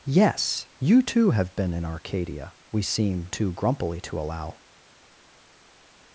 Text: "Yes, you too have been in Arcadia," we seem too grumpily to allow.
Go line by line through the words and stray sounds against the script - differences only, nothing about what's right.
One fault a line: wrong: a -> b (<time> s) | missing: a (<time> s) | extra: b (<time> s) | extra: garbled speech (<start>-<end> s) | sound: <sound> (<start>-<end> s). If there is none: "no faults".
no faults